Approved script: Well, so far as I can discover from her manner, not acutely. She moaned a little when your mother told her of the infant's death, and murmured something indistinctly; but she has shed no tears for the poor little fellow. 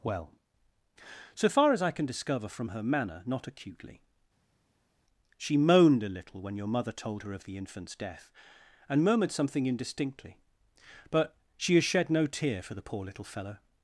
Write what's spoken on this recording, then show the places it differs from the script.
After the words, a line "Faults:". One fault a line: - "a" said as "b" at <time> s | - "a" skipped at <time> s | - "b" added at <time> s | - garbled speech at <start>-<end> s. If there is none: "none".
Well, so far as I can discover from her manner, not acutely. She moaned a little when your mother told her of the infant's death, and murmured something indistinctly; but she has shed no tear for the poor little fellow.
Faults:
- "tears" said as "tear" at 12.3 s